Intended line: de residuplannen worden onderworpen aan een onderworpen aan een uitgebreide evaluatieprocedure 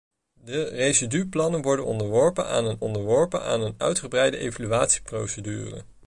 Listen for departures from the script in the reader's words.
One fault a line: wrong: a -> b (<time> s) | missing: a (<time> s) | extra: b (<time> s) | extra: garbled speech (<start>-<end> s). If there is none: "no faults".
no faults